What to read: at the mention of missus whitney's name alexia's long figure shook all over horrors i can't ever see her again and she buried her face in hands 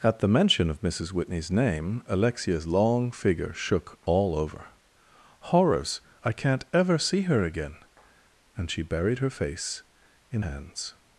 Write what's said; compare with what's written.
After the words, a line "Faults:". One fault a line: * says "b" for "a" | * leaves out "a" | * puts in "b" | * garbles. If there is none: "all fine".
at the mention of missus whitney's name alexia's long figure shook all over horrors i can't ever see her again and she buried her face in hands
Faults:
all fine